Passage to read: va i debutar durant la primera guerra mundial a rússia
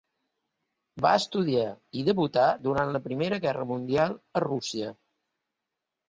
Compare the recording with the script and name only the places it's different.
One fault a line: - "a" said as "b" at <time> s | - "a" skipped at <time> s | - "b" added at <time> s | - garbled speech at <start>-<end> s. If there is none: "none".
- "estudiar" added at 1.2 s